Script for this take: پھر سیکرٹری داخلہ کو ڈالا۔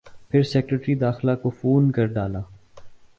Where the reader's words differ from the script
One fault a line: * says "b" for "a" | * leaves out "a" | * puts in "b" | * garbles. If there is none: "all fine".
* puts in "فون کر"